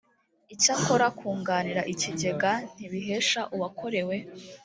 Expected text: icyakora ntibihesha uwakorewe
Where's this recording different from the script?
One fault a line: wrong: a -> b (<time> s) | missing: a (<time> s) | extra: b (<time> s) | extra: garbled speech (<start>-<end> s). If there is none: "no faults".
extra: kunganira ikigega (1.2 s)